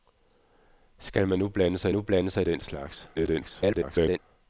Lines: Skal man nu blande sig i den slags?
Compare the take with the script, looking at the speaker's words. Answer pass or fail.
fail